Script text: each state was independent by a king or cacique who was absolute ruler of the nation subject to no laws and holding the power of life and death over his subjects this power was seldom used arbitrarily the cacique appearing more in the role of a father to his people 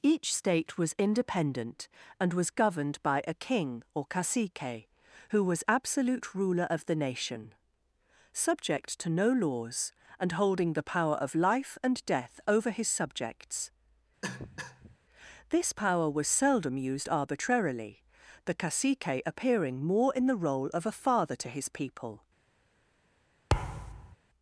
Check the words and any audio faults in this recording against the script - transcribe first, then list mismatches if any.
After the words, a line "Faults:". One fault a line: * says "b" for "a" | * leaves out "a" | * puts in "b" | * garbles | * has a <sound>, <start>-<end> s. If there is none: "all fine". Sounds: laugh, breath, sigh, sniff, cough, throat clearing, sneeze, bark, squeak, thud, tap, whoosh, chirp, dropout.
each state was independent and was governed by a king or cacique who was absolute ruler of the nation subject to no laws and holding the power of life and death over his subjects this power was seldom used arbitrarily the cacique appearing more in the role of a father to his people
Faults:
* puts in "and was governed"
* has a cough, 14.2-15.0 s
* has a thud, 23.5-24.2 s